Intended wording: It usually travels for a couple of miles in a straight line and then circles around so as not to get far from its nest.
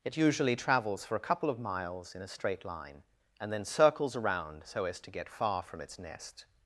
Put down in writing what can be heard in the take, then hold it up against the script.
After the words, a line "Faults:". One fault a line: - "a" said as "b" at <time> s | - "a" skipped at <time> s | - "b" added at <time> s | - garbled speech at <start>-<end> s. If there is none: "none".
It usually travels for a couple of miles in a straight line and then circles around so as to get far from its nest.
Faults:
- "not" skipped at 5.0 s